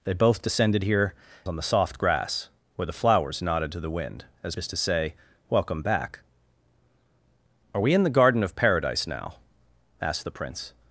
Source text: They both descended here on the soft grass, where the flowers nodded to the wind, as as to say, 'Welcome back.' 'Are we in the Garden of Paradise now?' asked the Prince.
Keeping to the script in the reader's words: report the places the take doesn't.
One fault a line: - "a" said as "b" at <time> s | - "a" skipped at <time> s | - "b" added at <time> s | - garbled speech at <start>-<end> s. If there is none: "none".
none